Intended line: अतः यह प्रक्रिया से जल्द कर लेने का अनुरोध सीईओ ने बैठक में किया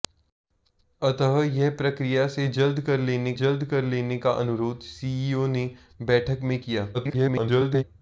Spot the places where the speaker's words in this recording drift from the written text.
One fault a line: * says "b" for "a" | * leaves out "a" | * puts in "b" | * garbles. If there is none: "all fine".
* puts in "जल्द कर लेने"
* garbles